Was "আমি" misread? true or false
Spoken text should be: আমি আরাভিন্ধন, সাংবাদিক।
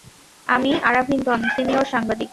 false